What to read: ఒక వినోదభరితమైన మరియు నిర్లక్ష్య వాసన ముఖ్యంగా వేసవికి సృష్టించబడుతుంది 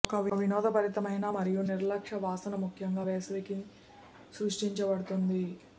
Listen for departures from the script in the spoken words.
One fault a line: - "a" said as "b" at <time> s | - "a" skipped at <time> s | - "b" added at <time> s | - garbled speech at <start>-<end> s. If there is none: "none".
none